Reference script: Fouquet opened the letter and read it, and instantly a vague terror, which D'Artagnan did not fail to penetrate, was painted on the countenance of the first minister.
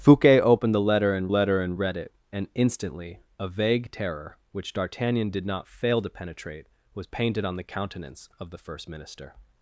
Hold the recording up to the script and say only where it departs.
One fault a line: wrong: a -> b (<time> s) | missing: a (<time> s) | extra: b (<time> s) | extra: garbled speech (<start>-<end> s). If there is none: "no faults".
extra: letter and (1.3 s)